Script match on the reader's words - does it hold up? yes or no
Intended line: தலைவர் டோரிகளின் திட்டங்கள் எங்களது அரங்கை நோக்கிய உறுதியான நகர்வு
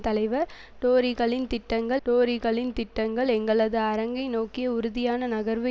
no